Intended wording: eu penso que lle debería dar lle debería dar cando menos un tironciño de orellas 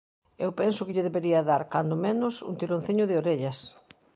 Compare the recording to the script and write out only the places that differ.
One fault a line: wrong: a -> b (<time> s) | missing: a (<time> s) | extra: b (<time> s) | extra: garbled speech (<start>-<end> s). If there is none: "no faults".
missing: lle debería dar (1.6 s)